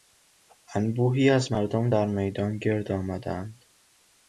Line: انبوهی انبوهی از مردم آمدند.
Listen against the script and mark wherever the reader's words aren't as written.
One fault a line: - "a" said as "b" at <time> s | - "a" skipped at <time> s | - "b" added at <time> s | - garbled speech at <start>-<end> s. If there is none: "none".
- "انبوهی" skipped at 1.3 s
- "در میدان گرد" added at 1.9 s